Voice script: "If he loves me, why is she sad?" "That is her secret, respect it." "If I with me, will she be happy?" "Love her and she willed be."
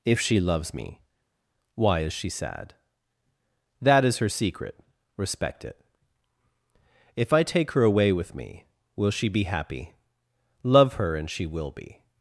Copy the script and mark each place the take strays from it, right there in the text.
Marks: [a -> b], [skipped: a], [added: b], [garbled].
"If [he -> she] loves me, why is she sad?" "That is her secret, respect it." "If I [added: take her away] with me, will she be happy?" "Love her and she [willed -> will] be."